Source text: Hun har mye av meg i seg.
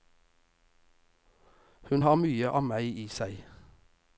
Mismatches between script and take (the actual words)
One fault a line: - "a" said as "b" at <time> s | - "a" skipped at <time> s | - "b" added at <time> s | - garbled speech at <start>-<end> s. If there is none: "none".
none